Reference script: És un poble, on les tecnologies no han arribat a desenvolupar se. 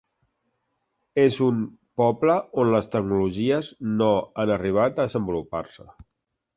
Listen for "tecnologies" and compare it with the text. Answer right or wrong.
right